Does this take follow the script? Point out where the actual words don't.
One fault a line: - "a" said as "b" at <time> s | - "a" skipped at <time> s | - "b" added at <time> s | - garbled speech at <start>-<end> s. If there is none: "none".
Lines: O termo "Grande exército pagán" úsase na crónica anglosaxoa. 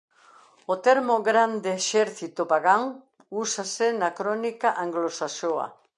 none